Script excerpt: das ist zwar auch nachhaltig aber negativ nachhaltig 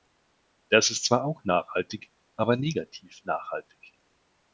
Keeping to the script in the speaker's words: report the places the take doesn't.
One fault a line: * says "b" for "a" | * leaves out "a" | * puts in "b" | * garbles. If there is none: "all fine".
all fine